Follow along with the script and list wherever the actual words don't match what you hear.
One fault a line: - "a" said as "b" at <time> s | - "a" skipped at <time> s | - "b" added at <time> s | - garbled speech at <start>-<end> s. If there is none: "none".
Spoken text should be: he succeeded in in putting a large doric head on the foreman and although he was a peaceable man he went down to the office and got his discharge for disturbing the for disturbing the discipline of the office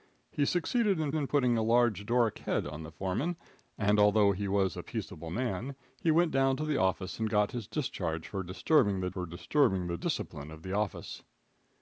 none